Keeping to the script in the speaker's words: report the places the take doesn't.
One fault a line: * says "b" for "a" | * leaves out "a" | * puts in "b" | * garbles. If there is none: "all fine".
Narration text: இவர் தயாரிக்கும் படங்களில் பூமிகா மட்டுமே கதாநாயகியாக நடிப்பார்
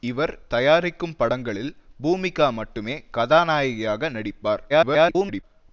* garbles